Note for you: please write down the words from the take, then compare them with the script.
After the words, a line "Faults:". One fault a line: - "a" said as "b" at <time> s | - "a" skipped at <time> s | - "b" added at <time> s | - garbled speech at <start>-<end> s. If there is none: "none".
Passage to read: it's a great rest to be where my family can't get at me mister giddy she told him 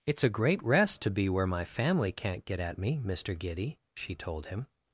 it's a great rest to be where my family can't get at me mister giddy she told him
Faults:
none